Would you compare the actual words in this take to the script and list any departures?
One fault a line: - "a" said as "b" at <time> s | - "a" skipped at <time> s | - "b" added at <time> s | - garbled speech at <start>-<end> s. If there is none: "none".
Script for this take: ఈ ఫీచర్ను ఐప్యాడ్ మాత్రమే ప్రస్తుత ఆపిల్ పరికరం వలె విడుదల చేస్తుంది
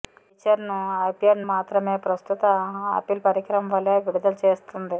none